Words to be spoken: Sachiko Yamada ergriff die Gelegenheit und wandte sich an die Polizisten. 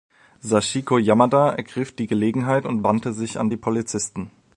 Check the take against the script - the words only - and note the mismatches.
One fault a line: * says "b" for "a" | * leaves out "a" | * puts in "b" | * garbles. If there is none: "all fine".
all fine